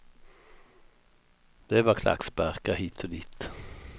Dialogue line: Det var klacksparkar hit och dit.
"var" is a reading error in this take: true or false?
false